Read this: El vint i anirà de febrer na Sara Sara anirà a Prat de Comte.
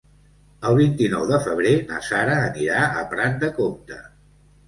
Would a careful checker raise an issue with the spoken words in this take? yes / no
yes